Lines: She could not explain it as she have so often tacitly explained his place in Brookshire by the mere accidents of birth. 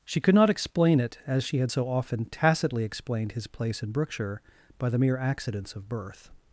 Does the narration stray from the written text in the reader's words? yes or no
yes